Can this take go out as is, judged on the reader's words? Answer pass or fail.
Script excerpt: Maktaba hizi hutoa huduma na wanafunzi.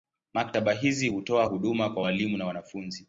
fail